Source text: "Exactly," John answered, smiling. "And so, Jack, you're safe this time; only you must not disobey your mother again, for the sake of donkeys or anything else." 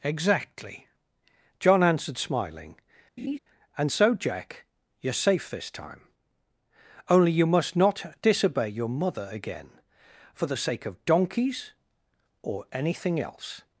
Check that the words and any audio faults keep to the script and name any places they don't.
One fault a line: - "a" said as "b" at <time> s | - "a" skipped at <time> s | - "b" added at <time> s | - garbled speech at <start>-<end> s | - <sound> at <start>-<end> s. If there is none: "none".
- laugh at 3.2-3.4 s